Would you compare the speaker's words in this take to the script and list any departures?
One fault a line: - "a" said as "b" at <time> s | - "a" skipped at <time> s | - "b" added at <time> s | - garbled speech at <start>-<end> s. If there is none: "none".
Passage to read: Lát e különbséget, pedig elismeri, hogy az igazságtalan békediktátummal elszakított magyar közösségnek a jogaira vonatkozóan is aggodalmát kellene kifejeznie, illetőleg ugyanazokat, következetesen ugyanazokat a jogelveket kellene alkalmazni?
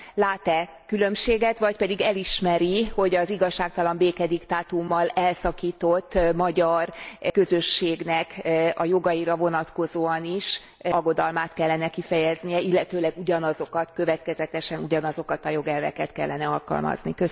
- "vagy" added at 1.6 s